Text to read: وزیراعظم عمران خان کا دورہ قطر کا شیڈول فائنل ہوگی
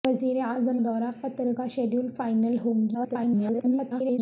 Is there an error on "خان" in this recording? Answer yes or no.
yes